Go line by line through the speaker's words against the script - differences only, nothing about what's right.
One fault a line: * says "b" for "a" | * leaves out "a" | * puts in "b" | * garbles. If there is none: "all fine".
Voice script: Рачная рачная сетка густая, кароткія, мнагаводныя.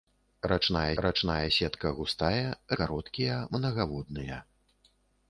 all fine